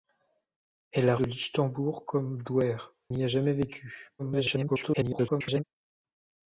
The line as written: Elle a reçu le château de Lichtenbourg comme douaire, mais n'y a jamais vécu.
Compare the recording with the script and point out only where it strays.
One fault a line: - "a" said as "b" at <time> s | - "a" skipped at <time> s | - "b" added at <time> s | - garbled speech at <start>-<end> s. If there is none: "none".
- "reçu le château" skipped at 1.1 s
- "mais" skipped at 2.9 s
- garbled speech at 4.2-5.6 s